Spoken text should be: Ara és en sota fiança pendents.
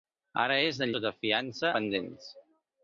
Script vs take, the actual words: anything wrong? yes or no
no